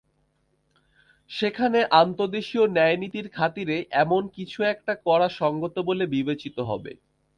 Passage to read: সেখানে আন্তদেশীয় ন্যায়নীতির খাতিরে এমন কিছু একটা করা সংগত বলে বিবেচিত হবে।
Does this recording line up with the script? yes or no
yes